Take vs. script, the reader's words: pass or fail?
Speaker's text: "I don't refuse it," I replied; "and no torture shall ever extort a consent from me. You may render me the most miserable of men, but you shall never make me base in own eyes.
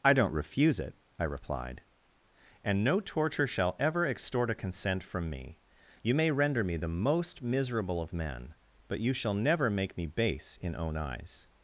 pass